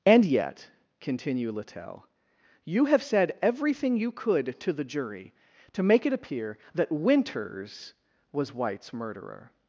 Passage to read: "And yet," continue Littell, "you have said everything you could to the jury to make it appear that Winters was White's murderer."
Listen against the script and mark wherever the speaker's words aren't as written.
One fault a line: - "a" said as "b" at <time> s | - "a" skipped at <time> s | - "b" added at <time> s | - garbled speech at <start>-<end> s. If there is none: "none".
none